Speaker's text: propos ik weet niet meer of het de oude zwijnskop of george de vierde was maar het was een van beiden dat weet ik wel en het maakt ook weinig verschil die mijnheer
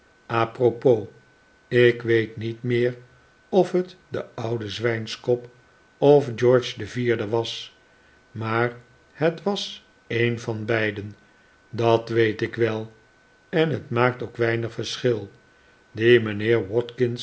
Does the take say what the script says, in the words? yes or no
yes